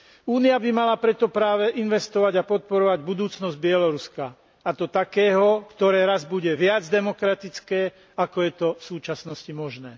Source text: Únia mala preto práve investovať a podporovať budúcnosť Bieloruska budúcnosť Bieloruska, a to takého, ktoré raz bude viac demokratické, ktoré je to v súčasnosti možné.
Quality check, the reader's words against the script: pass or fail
fail